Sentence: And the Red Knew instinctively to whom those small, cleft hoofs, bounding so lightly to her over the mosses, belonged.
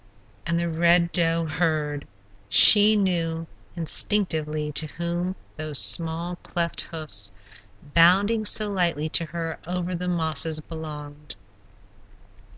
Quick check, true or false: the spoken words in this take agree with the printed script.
false